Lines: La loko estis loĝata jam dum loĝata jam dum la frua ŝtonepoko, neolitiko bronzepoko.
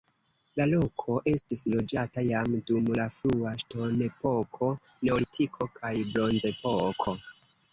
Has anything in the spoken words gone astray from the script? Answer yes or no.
yes